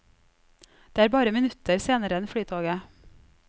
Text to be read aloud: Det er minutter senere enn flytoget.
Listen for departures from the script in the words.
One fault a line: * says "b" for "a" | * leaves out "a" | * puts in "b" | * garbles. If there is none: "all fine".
* puts in "bare"